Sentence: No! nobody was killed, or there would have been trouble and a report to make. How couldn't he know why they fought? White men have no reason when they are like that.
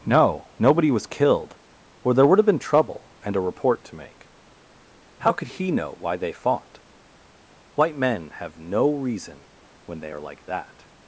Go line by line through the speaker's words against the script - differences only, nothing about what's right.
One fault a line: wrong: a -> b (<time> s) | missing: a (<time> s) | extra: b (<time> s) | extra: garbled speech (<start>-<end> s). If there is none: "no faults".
wrong: couldn't -> could (5.3 s)